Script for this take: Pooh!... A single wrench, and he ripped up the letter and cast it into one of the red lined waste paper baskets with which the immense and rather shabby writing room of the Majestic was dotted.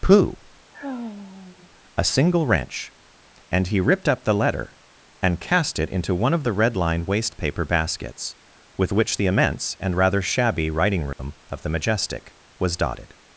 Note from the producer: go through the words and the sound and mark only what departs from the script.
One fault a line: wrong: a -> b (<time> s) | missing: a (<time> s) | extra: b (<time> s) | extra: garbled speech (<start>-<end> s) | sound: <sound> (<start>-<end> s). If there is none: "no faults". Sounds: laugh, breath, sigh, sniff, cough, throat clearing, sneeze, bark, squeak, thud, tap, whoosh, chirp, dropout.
sound: sigh (0.7-1.7 s)
sound: dropout (11.1-11.2 s)